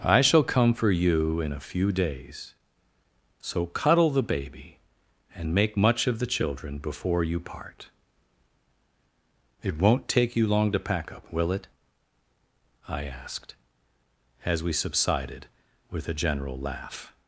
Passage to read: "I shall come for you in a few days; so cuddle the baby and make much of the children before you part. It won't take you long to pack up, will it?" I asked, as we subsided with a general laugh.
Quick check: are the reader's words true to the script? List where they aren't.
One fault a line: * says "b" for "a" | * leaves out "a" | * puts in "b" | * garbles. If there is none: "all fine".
all fine